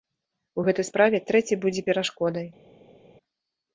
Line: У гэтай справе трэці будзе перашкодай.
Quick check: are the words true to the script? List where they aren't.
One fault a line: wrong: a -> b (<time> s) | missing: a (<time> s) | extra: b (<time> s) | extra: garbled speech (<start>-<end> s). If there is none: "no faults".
no faults